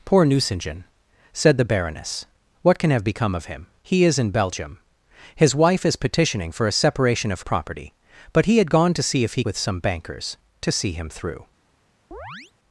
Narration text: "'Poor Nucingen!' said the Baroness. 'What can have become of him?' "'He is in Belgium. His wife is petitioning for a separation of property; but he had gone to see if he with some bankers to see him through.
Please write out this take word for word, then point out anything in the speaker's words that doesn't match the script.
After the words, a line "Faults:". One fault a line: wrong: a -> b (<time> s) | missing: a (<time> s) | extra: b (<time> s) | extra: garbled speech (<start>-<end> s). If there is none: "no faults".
"'Poor Nucingen!' said the Baroness. 'What can have become of him?' "'He is in Belgium. His wife is petitioning for a separation of property; but he had gone to see if he with some bankers to see him through.
Faults:
no faults